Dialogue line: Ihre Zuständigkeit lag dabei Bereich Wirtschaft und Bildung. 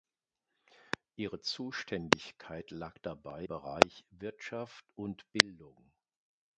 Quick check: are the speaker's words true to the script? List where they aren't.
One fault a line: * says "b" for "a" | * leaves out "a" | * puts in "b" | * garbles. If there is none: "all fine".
all fine